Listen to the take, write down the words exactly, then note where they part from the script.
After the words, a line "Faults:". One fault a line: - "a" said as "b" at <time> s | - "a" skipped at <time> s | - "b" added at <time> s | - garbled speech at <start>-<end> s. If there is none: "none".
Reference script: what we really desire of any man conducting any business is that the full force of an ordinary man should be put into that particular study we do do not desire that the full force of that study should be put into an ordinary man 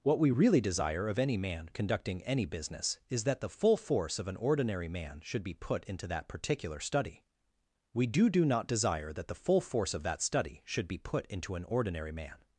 what we really desire of any man conducting any business is that the full force of an ordinary man should be put into that particular study we do do not desire that the full force of that study should be put into an ordinary man
Faults:
none